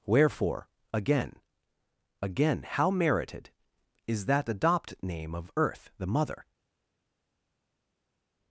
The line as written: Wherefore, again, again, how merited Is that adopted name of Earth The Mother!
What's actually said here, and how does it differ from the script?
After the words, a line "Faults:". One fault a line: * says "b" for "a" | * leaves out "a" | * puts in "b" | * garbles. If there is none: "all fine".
Wherefore, again, again, how merited Is that adopt name of Earth The Mother!
Faults:
* says "adopt" for "adopted"